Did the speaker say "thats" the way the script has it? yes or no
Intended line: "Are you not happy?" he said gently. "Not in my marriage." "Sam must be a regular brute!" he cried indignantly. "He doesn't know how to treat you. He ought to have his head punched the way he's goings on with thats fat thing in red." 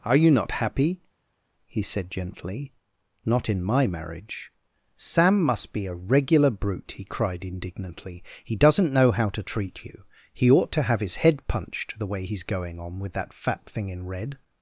no